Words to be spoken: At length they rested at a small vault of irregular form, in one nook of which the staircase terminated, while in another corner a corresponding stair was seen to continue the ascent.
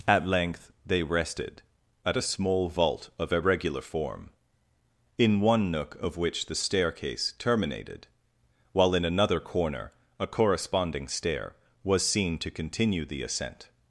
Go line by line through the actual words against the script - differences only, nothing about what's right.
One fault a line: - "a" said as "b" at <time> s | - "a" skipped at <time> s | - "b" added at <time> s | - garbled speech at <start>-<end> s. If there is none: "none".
none